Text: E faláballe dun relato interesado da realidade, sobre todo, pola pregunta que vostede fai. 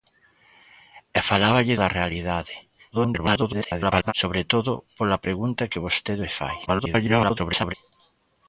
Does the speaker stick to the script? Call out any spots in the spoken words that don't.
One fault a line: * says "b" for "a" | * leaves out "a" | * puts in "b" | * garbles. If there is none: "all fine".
* leaves out "dun relato interesado"
* garbles
* garbles